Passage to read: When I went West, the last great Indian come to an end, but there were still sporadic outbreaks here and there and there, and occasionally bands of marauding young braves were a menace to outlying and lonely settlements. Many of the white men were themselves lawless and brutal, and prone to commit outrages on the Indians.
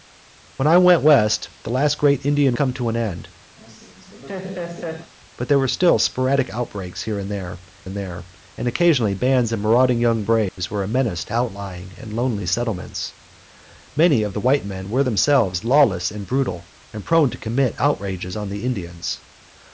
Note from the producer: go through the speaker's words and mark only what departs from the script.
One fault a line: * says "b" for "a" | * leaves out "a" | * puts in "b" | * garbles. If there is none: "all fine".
all fine